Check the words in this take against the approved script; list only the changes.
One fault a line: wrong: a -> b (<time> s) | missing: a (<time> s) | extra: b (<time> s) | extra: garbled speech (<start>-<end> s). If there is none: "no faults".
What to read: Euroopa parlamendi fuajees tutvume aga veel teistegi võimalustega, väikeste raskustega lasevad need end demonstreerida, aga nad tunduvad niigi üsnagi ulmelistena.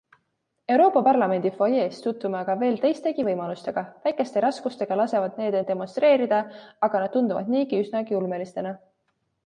no faults